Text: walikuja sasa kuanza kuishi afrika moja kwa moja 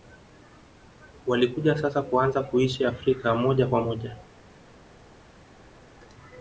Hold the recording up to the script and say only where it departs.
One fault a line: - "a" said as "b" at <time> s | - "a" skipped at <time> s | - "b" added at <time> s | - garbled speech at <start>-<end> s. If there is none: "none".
none